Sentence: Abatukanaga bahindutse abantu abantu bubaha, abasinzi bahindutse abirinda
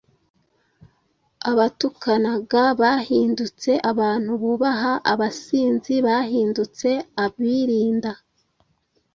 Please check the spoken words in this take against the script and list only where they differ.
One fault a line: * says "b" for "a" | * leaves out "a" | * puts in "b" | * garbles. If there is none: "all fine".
* leaves out "abantu"